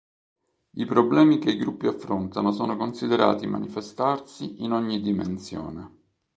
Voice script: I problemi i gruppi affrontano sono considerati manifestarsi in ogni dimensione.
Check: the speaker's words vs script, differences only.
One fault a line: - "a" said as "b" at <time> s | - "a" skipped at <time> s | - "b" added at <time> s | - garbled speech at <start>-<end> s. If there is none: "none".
- "che" added at 1.4 s